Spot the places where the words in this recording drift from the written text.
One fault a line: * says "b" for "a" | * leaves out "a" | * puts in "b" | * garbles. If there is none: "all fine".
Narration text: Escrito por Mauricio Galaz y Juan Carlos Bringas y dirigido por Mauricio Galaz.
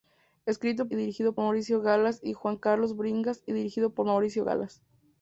* says "dirigido" for "por"